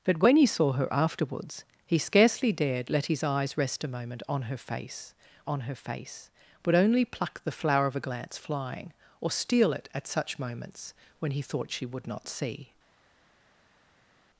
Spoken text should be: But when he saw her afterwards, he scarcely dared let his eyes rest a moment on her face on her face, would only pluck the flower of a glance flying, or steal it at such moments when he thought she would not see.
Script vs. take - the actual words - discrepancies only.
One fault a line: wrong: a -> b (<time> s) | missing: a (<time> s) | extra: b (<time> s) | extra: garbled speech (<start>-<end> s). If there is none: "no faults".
no faults